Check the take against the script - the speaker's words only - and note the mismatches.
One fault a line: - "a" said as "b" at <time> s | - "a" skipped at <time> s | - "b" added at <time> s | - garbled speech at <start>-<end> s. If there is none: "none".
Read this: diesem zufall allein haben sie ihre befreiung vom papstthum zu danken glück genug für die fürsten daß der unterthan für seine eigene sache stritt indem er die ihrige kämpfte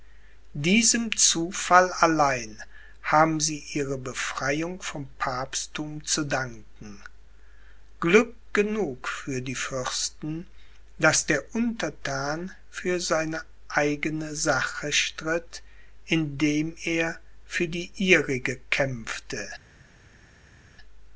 - "für" added at 17.4 s